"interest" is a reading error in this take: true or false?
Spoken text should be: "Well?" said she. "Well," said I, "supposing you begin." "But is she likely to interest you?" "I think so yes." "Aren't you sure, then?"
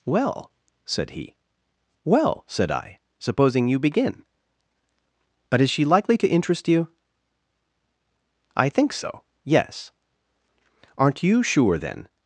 false